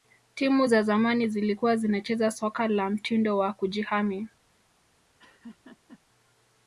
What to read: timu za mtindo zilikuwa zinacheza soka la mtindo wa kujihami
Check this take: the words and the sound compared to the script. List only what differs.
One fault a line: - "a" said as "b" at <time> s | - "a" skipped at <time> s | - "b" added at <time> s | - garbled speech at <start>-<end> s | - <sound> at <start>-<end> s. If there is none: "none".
- "mtindo" said as "zamani" at 0.8 s
- laugh at 5.2-6.0 s